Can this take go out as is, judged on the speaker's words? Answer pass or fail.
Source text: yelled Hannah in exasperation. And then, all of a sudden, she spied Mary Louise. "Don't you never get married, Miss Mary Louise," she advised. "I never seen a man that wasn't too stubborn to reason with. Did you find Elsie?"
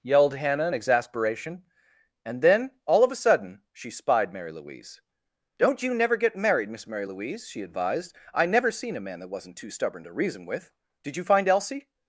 pass